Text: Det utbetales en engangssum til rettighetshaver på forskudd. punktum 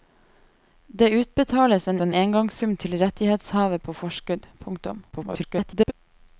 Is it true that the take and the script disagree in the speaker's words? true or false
true